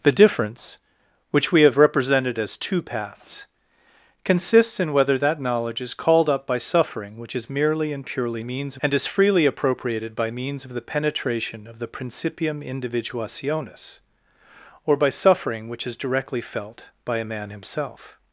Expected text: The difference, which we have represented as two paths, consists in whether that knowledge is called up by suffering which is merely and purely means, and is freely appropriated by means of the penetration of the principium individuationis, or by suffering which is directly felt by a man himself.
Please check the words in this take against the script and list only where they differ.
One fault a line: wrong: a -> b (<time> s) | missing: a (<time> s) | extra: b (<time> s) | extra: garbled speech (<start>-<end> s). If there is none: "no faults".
no faults